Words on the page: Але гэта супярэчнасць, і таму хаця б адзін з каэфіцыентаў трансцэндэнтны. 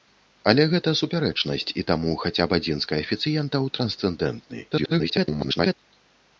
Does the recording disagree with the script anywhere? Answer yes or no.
yes